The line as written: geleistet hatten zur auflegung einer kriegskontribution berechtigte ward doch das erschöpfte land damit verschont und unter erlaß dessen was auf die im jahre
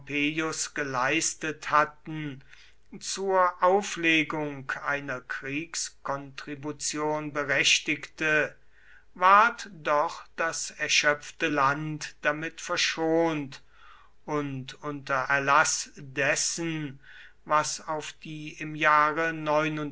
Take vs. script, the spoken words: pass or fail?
pass